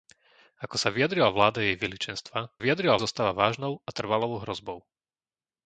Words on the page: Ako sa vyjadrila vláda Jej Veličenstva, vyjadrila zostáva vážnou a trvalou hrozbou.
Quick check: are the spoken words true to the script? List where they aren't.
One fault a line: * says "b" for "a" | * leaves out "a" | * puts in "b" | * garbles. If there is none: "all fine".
all fine